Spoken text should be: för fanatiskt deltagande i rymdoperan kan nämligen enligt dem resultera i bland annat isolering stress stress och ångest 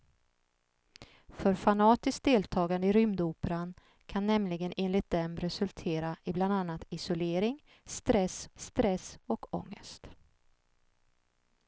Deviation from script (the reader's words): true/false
false